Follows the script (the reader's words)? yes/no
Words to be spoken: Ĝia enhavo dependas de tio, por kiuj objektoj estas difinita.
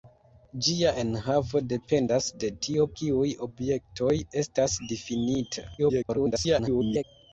no